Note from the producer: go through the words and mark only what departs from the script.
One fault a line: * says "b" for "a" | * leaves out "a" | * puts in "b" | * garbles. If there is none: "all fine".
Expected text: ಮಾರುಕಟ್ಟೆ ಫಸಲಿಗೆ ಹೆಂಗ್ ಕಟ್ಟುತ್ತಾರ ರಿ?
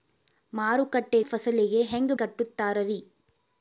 all fine